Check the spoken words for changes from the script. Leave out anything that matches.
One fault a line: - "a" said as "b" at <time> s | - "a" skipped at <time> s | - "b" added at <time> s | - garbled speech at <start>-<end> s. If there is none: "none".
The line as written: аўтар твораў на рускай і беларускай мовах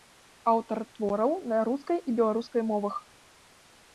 none